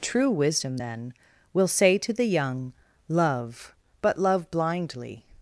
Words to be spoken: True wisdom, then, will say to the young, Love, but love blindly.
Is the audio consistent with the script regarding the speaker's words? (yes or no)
yes